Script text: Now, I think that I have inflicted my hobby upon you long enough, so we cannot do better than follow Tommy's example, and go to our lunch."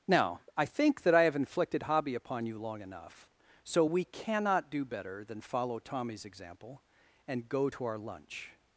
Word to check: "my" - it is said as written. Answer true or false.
false